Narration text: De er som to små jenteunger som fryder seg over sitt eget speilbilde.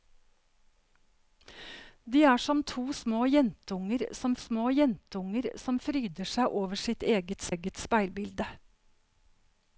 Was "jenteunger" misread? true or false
false